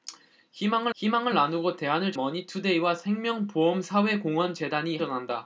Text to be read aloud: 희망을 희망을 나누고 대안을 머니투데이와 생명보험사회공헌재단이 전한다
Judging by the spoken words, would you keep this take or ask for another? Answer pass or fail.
pass